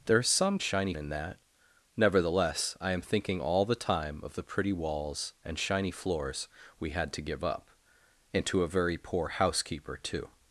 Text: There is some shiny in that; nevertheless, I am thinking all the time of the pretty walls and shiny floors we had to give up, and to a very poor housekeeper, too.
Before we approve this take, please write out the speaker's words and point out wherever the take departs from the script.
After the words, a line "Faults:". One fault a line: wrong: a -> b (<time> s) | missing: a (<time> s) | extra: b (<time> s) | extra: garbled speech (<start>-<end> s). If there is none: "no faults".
There is some shiny in that; nevertheless, I am thinking all the time of the pretty walls and shiny floors we had to give up, and to a very poor housekeeper, too.
Faults:
no faults